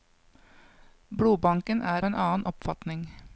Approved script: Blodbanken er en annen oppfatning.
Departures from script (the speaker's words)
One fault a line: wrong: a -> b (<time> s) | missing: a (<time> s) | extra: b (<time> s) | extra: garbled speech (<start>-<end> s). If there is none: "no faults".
no faults